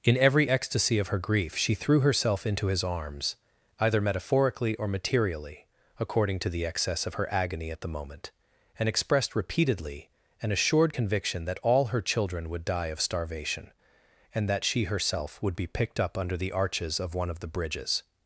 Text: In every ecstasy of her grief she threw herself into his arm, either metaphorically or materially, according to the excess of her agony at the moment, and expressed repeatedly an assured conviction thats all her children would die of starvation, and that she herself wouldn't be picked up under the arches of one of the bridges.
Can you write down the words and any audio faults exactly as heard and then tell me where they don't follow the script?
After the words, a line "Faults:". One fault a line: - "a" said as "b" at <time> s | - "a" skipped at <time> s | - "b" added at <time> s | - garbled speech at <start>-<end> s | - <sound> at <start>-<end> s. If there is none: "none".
In every ecstasy of her grief she threw herself into his arms, either metaphorically or materially, according to the excess of her agony at the moment, and expressed repeatedly an assured conviction that all her children would die of starvation, and that she herself would be picked up under the arches of one of the bridges.
Faults:
- "arm" said as "arms" at 2.8 s
- "thats" said as "that" at 11.5 s
- "wouldn't" said as "would" at 15.4 s